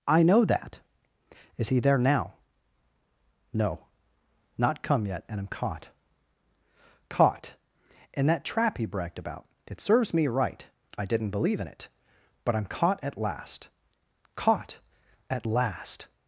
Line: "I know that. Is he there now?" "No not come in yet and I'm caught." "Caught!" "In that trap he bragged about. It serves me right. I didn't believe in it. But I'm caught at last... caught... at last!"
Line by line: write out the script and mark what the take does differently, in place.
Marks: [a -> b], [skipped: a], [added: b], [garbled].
"I know that. Is he there now?" "No not come [skipped: in] yet and I'm caught." "Caught!" "In that trap he bragged about. It serves me right. I didn't believe in it. But I'm caught at last... caught... at last!"